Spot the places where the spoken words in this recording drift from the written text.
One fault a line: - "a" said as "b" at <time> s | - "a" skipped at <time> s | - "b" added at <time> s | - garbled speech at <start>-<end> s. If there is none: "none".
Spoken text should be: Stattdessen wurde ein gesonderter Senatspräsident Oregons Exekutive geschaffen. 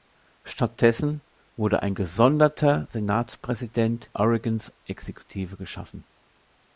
none